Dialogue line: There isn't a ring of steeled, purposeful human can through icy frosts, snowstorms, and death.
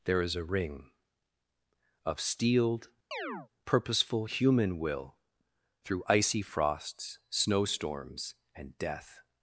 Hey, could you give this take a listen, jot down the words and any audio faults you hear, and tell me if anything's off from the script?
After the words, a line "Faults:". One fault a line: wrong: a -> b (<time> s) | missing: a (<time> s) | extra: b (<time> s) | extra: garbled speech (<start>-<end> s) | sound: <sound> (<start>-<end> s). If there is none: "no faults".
There is a ring of steeled, purposeful human will through icy frosts, snowstorms, and death.
Faults:
wrong: isn't -> is (0.2 s)
sound: chirp (3.1-3.5 s)
wrong: can -> will (4.8 s)